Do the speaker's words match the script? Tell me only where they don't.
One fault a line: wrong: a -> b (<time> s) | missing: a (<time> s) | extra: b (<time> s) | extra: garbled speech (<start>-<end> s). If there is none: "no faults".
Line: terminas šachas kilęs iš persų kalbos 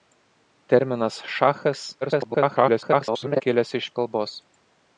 extra: garbled speech (2.0-3.4 s)
missing: persų (3.9 s)